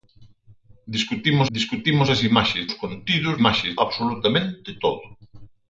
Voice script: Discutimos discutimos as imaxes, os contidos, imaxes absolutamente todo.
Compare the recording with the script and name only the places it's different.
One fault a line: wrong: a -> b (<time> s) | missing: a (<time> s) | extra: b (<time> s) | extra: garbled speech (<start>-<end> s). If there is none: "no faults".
no faults